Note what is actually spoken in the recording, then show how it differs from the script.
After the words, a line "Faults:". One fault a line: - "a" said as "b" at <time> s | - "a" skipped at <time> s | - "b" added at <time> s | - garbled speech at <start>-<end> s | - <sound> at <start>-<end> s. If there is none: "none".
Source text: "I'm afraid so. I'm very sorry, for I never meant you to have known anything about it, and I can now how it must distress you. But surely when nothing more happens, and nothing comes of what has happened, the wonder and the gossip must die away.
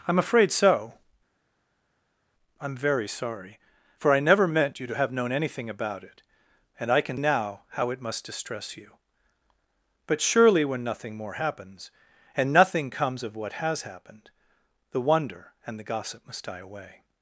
"I'm afraid so. I'm very sorry, for I never meant you to have known anything about it, and I can now how it must distress you. But surely when nothing more happens, and nothing comes of what has happened, the wonder and the gossip must die away.
Faults:
none